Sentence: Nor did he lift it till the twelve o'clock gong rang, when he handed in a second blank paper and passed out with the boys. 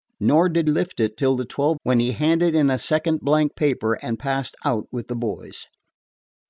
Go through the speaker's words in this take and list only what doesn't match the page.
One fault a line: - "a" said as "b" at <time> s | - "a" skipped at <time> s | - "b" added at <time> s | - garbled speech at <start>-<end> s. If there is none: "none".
- "he" skipped at 0.7 s
- "o'clock gong rang" skipped at 1.8 s